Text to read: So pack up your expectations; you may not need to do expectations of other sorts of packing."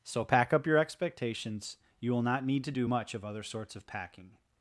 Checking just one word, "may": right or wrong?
wrong